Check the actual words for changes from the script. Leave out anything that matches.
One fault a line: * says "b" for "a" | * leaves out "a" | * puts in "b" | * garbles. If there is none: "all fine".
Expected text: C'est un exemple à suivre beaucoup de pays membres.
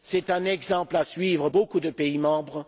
all fine